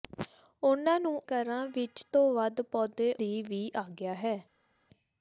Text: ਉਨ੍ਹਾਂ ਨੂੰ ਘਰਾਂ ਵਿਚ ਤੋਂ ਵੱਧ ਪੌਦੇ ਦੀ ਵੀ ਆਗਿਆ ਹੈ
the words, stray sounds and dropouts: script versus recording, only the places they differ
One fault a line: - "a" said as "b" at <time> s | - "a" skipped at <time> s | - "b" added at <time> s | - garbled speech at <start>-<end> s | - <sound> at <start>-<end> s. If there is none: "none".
none